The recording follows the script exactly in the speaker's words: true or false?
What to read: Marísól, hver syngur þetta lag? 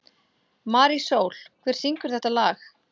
true